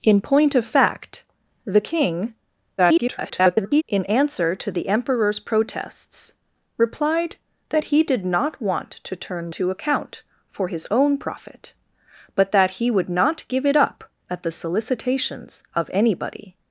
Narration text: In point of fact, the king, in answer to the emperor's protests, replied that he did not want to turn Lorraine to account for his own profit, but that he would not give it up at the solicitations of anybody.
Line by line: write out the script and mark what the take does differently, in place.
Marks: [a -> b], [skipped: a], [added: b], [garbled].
In point of fact, the king, [garbled] in answer to the emperor's protests, replied that he did not want to turn [skipped: Lorraine] to account for his own profit, but that he would not give it up at the solicitations of anybody.